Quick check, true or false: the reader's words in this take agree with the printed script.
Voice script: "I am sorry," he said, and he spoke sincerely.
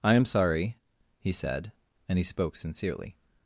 true